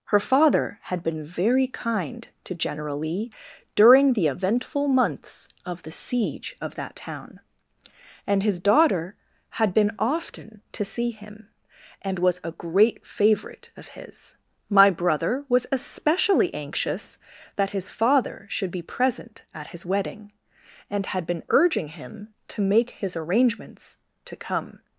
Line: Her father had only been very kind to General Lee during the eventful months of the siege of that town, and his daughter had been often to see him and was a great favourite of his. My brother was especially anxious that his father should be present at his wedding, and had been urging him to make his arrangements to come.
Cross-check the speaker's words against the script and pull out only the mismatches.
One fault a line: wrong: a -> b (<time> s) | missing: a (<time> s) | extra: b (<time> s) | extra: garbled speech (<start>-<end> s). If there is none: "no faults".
missing: only (1.0 s)